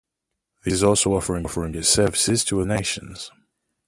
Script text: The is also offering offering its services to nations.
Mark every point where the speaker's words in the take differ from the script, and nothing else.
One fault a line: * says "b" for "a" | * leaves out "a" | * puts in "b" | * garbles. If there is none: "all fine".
all fine